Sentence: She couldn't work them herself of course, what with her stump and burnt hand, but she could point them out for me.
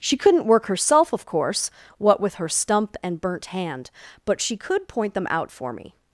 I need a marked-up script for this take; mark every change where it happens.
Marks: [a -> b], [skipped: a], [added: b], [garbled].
She couldn't work [skipped: them] herself of course, what with her stump and burnt hand, but she could point them out for me.